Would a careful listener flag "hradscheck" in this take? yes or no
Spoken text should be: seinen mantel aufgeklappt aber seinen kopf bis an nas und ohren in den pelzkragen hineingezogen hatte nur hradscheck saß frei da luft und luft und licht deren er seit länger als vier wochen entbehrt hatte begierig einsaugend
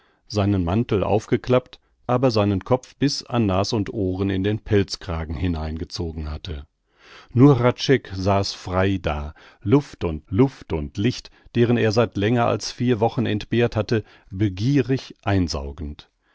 no